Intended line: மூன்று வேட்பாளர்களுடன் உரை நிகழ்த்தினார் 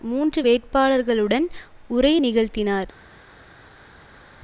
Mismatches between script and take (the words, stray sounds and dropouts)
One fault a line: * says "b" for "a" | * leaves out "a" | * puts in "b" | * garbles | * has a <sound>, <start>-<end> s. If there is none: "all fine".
all fine